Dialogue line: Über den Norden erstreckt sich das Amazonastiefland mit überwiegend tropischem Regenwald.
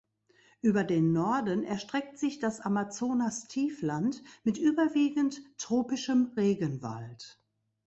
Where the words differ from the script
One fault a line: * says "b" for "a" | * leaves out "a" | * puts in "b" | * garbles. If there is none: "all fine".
all fine